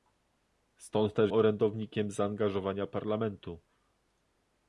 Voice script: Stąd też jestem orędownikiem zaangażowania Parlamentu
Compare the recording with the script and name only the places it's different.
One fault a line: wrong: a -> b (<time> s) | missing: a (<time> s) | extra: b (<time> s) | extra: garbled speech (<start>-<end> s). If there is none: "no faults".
missing: jestem (1.3 s)